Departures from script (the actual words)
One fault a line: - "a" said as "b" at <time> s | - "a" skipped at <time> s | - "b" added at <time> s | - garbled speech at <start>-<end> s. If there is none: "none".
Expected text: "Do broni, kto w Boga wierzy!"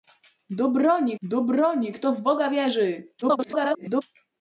- "do broni" added at 1.2 s
- garbled speech at 3.2-4.0 s